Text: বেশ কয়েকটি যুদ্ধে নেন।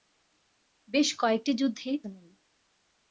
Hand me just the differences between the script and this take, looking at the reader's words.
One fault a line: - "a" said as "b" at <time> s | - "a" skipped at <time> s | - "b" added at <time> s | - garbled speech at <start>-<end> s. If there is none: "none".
none